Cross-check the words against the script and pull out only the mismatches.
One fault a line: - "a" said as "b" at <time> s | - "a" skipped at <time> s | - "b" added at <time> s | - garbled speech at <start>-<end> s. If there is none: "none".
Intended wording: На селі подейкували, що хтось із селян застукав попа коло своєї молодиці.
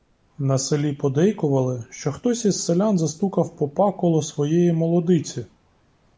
none